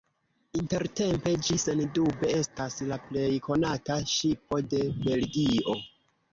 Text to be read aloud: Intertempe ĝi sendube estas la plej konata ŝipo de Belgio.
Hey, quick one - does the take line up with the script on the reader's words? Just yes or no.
yes